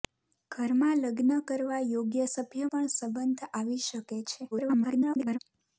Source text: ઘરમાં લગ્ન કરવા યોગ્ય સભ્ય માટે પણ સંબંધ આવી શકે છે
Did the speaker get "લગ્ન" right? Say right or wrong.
right